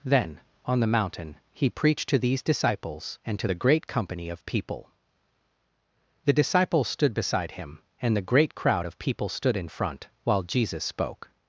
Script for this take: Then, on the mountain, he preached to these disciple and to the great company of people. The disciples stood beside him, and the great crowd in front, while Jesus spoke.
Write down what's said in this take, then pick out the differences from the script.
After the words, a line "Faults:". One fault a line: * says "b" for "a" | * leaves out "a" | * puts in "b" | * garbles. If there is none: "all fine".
Then, on the mountain, he preached to these disciples and to the great company of people. The disciples stood beside him, and the great crowd of people stood in front, while Jesus spoke.
Faults:
* says "disciples" for "disciple"
* puts in "of people stood"